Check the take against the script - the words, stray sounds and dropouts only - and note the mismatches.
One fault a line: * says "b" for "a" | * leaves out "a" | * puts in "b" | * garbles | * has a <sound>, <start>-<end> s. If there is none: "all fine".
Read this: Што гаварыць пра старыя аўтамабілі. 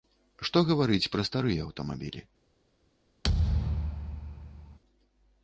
* has a thud, 3.2-4.8 s